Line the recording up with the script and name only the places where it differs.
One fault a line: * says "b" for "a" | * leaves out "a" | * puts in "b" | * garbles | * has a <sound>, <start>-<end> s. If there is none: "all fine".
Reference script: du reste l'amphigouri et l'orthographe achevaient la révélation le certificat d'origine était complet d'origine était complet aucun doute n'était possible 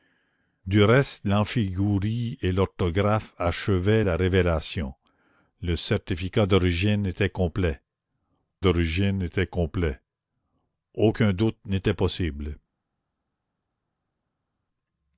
all fine